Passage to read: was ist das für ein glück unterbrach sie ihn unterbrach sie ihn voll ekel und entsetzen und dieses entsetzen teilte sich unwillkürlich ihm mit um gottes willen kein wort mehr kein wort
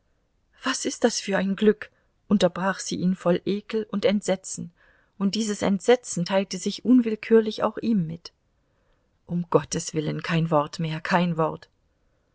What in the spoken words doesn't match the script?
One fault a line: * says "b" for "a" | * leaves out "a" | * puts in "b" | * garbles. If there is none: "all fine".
* leaves out "unterbrach sie ihn"
* puts in "auch"